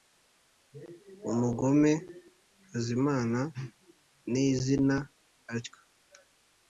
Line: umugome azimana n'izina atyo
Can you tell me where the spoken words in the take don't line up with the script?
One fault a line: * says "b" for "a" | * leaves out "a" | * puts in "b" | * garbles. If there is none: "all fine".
all fine